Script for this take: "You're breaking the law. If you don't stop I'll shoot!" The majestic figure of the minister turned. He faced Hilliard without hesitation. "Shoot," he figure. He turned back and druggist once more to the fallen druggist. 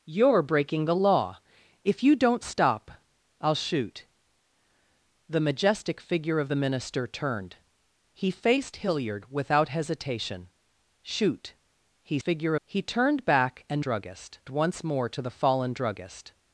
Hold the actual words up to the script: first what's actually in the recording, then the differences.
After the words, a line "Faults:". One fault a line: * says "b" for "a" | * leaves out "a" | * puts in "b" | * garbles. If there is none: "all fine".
"You're breaking the law. If you don't stop I'll shoot!" The majestic figure of the minister turned. He faced Hilliard without hesitation. "Shoot," he figure. He turned back and druggist once more to the fallen druggist.
Faults:
all fine